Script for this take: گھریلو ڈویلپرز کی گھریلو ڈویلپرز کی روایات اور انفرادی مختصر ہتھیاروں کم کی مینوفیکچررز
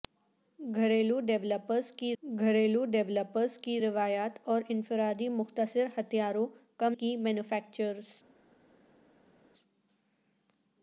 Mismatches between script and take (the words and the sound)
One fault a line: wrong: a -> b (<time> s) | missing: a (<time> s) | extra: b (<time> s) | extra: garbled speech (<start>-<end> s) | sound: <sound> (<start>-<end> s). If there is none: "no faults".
no faults